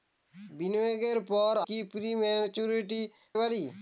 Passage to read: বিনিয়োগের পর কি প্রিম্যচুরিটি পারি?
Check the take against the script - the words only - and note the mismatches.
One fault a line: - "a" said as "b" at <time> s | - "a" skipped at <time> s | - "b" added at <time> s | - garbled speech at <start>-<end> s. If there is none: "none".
none